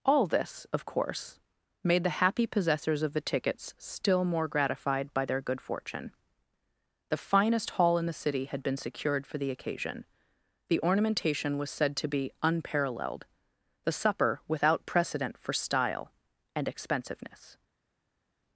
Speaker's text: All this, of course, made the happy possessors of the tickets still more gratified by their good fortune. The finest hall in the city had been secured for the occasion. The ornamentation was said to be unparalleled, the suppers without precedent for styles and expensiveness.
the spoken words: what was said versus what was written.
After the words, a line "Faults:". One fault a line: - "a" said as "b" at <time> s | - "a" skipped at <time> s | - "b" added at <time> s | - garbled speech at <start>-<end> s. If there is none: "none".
All this, of course, made the happy possessors of the tickets still more gratified by their good fortune. The finest hall in the city had been secured for the occasion. The ornamentation was said to be unparalleled, the supper without precedent for style and expensiveness.
Faults:
- "suppers" said as "supper" at 13.9 s
- "styles" said as "style" at 15.5 s